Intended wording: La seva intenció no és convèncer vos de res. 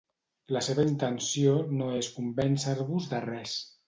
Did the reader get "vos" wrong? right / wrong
right